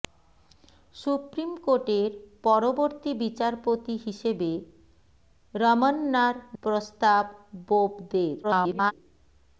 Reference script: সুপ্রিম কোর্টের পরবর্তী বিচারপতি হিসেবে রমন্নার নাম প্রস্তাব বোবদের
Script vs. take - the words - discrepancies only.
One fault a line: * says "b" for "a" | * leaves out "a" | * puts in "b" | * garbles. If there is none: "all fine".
* leaves out "নাম"
* garbles